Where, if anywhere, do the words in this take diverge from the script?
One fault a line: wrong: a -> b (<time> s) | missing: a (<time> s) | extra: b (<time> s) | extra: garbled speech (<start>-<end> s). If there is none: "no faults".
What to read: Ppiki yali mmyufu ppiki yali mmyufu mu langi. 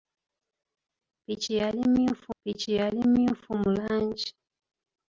no faults